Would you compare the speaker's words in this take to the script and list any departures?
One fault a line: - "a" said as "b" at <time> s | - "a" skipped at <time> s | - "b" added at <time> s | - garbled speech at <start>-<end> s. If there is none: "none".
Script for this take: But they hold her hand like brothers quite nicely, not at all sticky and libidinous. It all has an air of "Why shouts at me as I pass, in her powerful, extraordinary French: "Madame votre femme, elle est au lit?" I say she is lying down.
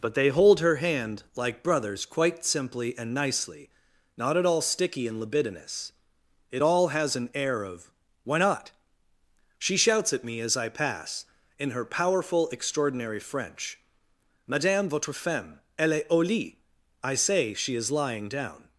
- "simply and" added at 2.4 s
- "not She" added at 8.4 s